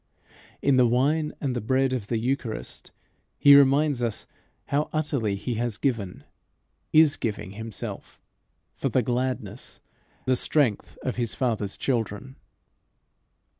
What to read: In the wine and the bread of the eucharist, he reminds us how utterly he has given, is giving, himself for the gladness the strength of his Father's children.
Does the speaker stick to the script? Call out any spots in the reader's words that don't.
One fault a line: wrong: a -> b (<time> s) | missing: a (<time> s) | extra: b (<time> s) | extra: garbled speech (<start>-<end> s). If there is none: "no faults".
no faults